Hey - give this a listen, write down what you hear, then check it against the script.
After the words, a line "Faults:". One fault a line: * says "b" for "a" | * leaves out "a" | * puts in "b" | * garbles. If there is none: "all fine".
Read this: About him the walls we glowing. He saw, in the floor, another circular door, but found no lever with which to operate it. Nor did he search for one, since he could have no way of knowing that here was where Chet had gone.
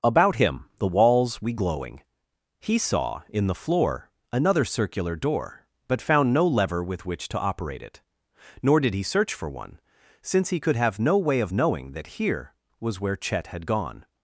About him the walls we glowing. He saw, in the floor, another circular door, but found no lever with which to operate it. Nor did he search for one, since he could have no way of knowing that here was where Chet had gone.
Faults:
all fine